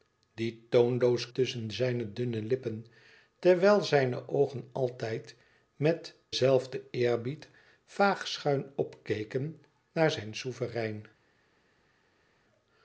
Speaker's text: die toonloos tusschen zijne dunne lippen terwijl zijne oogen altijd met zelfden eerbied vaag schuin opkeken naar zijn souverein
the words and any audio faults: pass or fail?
pass